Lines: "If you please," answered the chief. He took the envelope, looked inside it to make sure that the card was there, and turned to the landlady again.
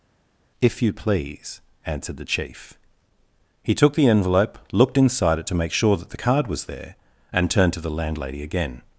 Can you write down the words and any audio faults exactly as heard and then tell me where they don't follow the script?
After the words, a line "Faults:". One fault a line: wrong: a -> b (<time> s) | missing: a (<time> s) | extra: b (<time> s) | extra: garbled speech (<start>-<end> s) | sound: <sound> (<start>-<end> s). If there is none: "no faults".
"If you please," answered the chief. He took the envelope, looked inside it to make sure that the card was there, and turned to the landlady again.
Faults:
no faults